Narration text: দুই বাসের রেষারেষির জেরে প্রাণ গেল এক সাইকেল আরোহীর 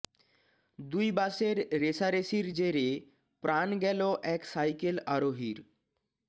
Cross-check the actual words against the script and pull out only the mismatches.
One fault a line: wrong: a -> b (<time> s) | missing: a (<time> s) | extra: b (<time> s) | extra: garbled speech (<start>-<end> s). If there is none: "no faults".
no faults